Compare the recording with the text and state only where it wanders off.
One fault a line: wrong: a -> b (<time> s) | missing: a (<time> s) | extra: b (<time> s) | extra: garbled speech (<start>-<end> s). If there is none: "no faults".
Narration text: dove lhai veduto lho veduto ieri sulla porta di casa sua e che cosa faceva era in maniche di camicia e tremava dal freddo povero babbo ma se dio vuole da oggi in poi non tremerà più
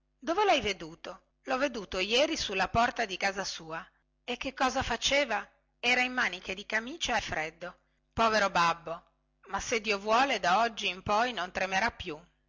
missing: e tremava dal (7.2 s)